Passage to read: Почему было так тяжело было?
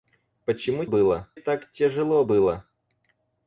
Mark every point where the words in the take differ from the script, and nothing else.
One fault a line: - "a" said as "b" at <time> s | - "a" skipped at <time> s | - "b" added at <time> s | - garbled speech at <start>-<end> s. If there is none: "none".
none